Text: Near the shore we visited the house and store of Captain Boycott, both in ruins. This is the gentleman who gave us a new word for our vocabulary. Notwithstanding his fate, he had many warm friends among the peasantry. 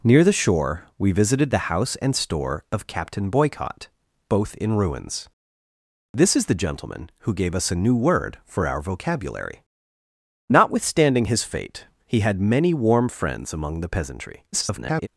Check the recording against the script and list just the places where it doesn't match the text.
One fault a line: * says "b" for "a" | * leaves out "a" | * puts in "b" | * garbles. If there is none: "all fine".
* garbles